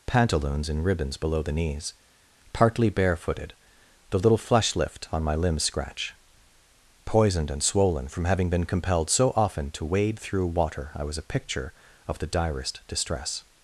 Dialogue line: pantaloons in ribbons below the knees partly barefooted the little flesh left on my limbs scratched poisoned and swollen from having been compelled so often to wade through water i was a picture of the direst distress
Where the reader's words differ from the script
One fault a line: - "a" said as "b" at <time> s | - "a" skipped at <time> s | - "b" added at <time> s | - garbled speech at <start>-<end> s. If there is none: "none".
- "left" said as "lift" at 4.8 s
- "scratched" said as "scratch" at 5.6 s